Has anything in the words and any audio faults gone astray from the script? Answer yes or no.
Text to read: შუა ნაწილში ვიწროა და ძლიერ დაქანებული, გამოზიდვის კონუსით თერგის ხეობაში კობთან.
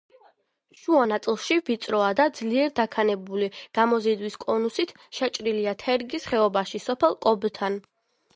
yes